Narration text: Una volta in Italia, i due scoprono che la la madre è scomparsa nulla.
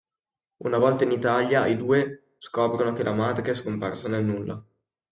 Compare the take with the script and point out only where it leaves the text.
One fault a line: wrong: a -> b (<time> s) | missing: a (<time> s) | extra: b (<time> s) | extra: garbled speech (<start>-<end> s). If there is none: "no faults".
missing: la (3.1 s)
extra: nel (4.1 s)